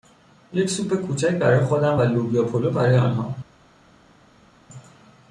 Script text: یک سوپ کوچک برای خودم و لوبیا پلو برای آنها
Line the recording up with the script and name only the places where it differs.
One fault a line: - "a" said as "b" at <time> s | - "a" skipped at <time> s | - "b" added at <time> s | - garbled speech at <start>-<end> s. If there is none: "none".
none